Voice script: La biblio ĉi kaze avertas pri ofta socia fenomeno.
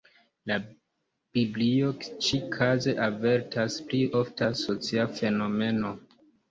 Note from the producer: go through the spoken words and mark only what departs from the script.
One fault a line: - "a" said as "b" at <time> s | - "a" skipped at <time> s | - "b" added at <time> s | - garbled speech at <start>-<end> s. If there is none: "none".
none